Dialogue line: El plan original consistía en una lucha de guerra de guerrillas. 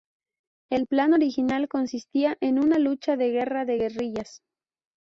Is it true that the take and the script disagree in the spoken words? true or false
false